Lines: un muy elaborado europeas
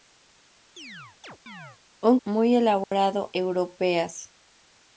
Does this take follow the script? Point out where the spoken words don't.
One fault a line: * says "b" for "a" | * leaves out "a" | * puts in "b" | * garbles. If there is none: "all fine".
all fine